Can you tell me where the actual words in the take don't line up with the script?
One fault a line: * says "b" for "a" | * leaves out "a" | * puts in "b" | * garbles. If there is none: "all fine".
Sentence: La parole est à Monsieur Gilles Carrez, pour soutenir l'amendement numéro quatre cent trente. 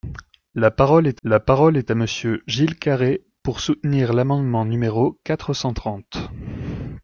* puts in "la parole est"